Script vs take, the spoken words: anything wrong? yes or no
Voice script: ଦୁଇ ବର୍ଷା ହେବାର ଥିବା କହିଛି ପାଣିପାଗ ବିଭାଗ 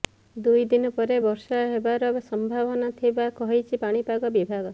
yes